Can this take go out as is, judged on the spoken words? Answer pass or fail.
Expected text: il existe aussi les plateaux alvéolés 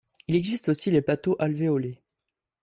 pass